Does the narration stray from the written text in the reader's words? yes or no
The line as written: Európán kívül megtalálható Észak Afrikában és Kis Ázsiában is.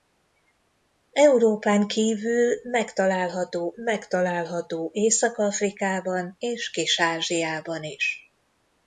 yes